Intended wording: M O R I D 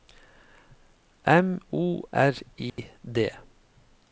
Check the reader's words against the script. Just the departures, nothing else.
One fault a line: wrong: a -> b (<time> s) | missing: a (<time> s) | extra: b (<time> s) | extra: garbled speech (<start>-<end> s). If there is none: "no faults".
no faults